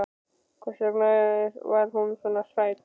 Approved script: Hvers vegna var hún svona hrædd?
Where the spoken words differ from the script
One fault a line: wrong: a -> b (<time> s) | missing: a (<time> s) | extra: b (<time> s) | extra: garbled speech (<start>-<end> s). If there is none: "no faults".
no faults